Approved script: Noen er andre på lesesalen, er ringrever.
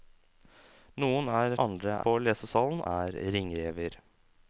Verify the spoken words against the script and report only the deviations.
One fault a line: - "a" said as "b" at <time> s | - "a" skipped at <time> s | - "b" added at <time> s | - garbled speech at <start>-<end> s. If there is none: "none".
none